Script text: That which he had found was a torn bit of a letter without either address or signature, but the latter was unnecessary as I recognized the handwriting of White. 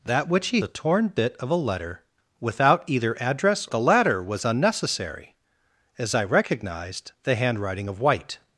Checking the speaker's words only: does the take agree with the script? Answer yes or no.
no